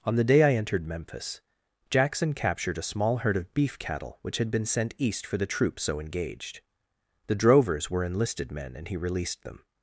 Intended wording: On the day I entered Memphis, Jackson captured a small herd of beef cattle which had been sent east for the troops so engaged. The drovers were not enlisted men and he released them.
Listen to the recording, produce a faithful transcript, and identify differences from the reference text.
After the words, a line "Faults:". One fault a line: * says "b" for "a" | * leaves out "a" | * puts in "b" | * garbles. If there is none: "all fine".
On the day I entered Memphis, Jackson captured a small herd of beef cattle which had been sent east for the troops so engaged. The drovers were enlisted men and he released them.
Faults:
* leaves out "not"